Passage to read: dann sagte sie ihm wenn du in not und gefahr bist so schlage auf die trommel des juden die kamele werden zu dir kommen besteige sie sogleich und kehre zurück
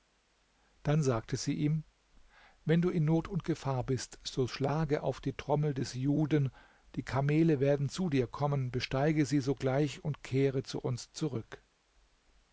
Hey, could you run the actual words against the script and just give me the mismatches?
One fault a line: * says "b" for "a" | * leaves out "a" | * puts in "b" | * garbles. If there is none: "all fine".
* puts in "zu uns"